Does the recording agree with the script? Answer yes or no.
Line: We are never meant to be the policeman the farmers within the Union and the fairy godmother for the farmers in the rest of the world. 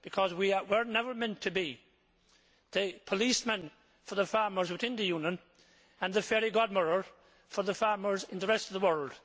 no